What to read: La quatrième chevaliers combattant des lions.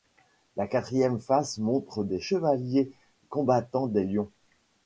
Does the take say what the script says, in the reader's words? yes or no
no